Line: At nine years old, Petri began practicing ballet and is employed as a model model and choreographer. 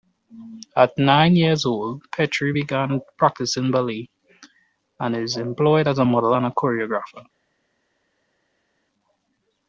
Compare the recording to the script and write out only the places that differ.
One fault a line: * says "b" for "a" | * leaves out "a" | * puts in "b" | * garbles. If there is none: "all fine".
* leaves out "model"